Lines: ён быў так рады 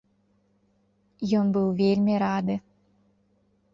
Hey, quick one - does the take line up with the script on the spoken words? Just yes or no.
no